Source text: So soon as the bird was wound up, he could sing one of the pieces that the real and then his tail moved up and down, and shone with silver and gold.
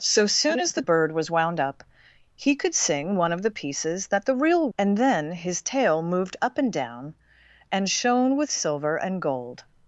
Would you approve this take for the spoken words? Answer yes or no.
yes